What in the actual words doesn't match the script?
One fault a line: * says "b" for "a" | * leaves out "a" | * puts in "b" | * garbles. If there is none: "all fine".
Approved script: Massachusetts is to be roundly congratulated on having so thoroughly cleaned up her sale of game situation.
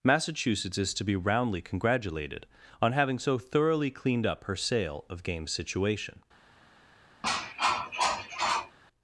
all fine